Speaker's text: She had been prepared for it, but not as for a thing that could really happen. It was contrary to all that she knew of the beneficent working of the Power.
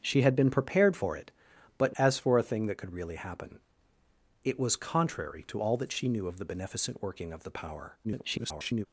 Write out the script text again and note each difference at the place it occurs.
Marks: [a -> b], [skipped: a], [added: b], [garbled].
She had been prepared for it, but [skipped: not] as for a thing that could really happen. It was contrary to all that she knew of the beneficent working of the Power. [garbled]